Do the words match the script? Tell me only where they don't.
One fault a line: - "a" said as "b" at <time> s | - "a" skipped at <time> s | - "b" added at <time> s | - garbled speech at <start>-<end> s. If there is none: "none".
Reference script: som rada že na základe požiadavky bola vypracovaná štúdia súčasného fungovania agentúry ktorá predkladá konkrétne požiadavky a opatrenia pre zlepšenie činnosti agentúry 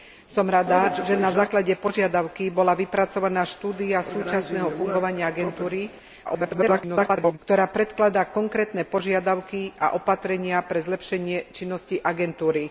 - garbled speech at 6.3-7.4 s